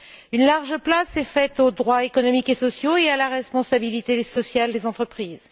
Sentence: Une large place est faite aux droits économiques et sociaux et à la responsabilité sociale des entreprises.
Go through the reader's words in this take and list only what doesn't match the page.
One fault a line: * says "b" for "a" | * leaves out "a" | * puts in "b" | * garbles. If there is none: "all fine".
all fine